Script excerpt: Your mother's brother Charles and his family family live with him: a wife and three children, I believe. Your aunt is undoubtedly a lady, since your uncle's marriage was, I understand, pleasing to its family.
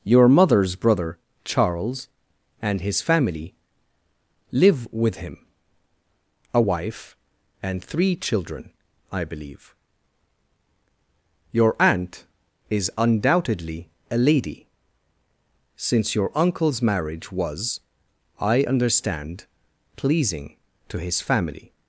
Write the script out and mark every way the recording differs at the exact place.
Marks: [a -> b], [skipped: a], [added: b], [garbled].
Your mother's brother Charles and his family [skipped: family] live with him: a wife and three children, I believe. Your aunt is undoubtedly a lady, since your uncle's marriage was, I understand, pleasing to [its -> his] family.